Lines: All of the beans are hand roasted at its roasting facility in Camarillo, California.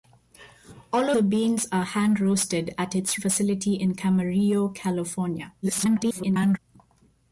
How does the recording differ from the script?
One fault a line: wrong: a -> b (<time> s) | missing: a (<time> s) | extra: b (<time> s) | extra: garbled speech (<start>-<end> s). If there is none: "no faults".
missing: of (1.1 s)
missing: roasting (3.2 s)
extra: garbled speech (5.6-6.6 s)